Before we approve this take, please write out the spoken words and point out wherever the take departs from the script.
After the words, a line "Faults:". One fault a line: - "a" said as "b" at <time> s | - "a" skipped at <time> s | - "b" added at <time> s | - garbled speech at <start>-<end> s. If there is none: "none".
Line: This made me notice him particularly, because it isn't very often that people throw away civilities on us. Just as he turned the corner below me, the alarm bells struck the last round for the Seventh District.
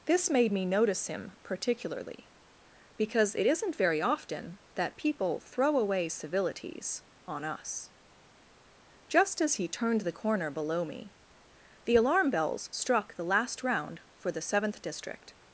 This made me notice him particularly, because it isn't very often that people throw away civilities on us. Just as he turned the corner below me, the alarm bells struck the last round for the Seventh District.
Faults:
none